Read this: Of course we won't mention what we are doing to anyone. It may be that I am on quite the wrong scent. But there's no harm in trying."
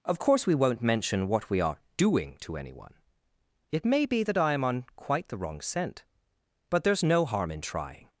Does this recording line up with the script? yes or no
yes